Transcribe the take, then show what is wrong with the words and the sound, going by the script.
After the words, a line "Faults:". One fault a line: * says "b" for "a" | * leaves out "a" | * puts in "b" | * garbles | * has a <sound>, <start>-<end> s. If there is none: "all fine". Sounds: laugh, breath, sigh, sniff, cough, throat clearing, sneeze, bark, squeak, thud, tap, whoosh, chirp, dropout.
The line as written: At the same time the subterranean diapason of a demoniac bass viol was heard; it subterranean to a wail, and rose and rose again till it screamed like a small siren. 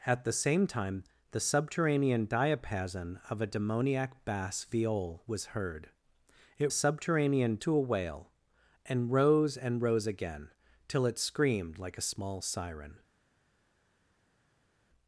At the same time the subterranean diapason of a demoniac bass viol was heard; it subterranean to a wail, and rose and rose again till it screamed like a small siren.
Faults:
all fine